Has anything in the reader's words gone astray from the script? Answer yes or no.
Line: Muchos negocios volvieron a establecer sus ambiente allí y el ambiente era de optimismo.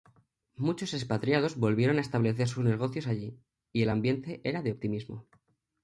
yes